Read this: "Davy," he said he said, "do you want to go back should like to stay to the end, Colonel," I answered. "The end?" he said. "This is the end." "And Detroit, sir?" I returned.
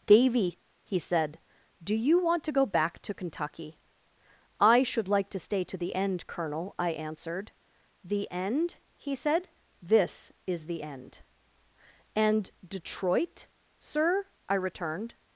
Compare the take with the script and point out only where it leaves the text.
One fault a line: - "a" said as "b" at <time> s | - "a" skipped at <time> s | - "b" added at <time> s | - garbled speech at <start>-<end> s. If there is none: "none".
- "he said" skipped at 1.4 s
- "to Kentucky I" added at 3.0 s